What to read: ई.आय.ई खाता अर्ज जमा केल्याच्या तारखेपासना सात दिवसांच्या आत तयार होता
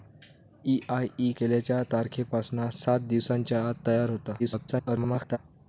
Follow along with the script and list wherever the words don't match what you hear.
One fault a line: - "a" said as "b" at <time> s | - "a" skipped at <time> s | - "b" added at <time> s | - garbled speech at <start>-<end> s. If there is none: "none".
- "खाता अर्ज जमा" skipped at 1.3 s
- garbled speech at 4.4-5.4 s